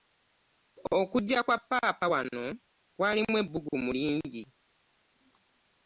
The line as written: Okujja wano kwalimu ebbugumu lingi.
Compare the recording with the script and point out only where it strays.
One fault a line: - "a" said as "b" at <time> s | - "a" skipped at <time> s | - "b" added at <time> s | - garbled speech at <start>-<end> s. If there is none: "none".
- "kwa ppaapa" added at 1.4 s